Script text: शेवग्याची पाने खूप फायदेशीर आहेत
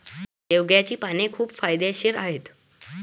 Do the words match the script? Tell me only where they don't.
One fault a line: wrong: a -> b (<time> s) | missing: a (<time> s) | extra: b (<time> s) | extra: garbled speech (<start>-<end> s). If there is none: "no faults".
no faults